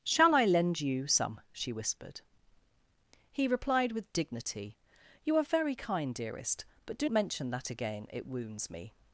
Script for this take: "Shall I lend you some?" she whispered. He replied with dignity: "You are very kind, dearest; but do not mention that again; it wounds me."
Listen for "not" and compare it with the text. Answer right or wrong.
wrong